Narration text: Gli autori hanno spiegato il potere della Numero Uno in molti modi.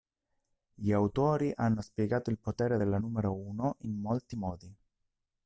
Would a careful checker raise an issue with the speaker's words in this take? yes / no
no